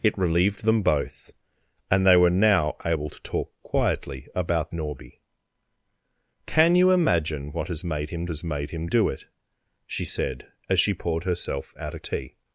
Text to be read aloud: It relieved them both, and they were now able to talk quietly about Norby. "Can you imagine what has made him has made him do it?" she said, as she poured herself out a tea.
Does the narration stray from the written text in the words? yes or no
no